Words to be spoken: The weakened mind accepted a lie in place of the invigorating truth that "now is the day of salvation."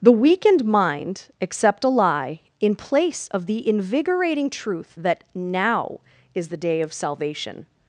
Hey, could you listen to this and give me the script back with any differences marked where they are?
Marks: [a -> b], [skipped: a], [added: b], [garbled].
The weakened mind [accepted -> accept] a lie in place of the invigorating truth that "now is the day of salvation."